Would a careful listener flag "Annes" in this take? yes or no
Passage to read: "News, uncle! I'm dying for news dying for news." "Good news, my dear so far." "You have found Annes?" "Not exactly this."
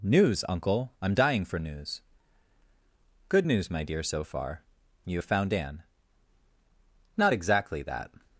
yes